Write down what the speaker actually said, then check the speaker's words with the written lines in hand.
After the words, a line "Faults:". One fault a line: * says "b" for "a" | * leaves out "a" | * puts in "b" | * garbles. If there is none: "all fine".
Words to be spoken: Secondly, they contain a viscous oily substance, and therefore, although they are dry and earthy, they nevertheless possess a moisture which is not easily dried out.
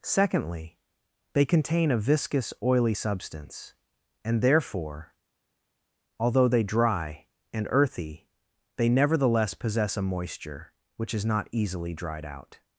Secondly, they contain a viscous oily substance, and therefore, although they dry and earthy, they nevertheless possess a moisture which is not easily dried out.
Faults:
* leaves out "are"